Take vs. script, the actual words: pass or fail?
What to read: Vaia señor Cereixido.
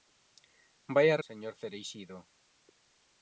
pass